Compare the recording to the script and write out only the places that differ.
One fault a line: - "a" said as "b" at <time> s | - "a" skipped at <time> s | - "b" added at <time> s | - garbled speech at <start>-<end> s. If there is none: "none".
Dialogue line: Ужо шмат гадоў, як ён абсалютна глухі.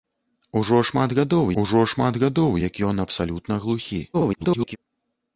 - "ужо шмат гадоў" added at 1.6 s
- garbled speech at 4.1-4.8 s